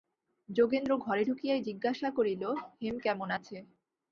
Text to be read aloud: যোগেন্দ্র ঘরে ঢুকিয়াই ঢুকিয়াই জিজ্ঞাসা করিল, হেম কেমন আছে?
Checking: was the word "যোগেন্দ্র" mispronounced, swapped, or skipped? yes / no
no